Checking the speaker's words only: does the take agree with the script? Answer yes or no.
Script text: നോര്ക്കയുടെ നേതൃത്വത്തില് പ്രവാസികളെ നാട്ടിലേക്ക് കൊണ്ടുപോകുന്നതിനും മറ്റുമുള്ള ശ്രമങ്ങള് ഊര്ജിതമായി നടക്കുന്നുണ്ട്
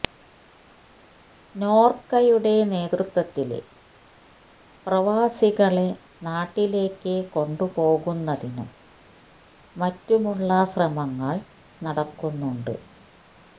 no